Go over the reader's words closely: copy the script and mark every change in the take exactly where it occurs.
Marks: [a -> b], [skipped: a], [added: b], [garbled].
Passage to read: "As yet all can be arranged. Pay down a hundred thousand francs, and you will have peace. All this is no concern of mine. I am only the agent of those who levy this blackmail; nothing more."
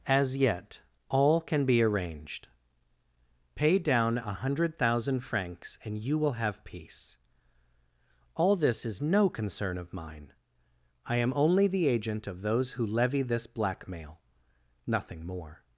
"As yet all can be arranged. Pay down a hundred thousand francs, and you will have peace. All this is no concern of mine. I am only the agent of those who levy this blackmail; nothing more."